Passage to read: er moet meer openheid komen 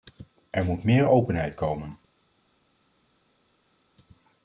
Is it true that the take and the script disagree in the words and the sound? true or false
false